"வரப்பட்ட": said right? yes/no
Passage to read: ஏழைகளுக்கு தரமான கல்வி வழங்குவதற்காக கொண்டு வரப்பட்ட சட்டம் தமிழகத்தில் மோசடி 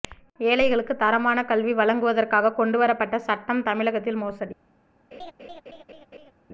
yes